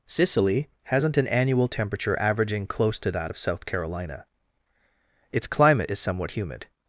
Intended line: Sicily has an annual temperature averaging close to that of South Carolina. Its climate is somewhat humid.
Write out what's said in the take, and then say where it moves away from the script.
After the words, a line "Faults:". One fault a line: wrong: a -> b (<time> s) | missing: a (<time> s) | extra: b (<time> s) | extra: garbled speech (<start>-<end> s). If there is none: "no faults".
Sicily hasn't an annual temperature averaging close to that of South Carolina. Its climate is somewhat humid.
Faults:
wrong: has -> hasn't (0.8 s)